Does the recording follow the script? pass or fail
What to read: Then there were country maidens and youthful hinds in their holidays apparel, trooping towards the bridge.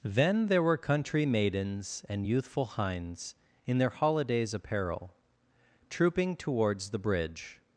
pass